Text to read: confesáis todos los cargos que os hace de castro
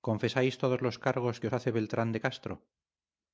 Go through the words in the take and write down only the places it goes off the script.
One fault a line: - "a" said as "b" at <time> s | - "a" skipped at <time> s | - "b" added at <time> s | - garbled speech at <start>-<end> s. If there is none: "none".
- "beltrán" added at 1.7 s